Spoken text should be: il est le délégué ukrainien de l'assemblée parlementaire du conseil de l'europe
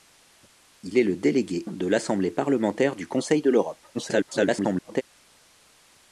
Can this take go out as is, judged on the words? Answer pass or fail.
fail